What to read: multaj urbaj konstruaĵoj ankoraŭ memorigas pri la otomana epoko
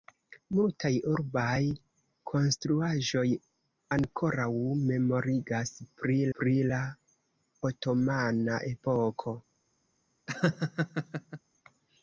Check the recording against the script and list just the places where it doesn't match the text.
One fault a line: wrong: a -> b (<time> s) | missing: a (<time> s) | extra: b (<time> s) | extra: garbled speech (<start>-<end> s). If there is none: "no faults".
extra: pri (6.4 s)